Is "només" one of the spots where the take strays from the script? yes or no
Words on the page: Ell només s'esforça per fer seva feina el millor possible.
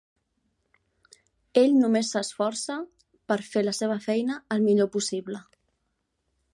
no